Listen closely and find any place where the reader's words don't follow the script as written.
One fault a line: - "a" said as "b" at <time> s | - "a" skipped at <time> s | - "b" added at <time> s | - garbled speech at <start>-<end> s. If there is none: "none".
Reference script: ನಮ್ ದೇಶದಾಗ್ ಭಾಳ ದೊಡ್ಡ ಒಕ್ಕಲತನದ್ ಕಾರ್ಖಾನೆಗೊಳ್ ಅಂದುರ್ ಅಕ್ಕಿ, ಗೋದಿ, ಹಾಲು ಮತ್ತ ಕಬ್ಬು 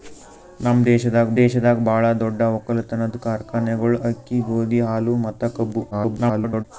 - "ದೇಶದಾಗ್" added at 1.4 s
- "ಅಂದುರ್" skipped at 4.0 s
- garbled speech at 5.9-6.6 s